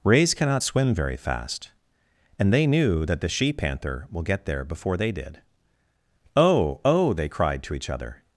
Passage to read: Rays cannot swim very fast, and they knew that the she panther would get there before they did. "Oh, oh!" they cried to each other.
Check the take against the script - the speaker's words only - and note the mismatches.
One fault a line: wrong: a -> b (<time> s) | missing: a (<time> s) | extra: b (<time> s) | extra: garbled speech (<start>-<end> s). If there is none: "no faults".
wrong: would -> will (4.1 s)